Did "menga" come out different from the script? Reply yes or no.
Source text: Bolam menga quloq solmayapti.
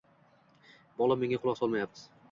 no